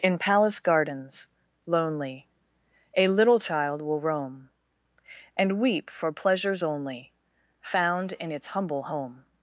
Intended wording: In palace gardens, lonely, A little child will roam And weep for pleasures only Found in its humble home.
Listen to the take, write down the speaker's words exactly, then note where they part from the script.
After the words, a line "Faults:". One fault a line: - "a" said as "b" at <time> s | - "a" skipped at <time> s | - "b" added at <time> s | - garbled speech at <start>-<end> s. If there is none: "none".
In palace gardens, lonely, A little child will roam And weep for pleasures only Found in its humble home.
Faults:
none